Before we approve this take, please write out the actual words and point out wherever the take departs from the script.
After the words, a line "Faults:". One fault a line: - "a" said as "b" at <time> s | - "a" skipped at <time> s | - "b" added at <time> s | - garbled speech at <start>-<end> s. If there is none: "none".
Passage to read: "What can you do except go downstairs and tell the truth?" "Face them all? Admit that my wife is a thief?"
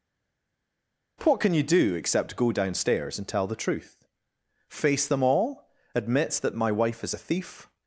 "What can you do except go downstairs and tell the truth?" "Face them all? Admit that my wife is a thief?"
Faults:
none